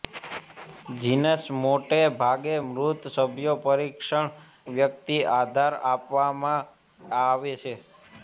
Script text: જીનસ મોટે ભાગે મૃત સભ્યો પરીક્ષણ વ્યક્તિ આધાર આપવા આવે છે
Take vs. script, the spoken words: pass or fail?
pass